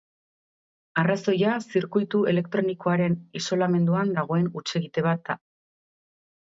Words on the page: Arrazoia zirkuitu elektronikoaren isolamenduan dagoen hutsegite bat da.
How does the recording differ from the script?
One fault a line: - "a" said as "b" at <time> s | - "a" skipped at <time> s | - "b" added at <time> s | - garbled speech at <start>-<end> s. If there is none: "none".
none